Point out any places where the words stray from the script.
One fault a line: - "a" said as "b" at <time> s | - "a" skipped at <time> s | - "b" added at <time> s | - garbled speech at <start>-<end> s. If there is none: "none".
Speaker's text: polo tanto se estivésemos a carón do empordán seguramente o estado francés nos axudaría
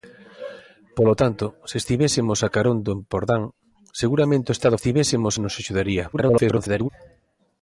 - "francés" said as "estivésemos" at 4.8 s
- garbled speech at 6.1-6.9 s